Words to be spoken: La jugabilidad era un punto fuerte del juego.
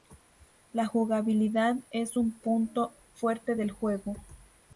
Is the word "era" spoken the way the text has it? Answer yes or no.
no